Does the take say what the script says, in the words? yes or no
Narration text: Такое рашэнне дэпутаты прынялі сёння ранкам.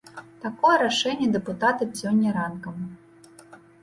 no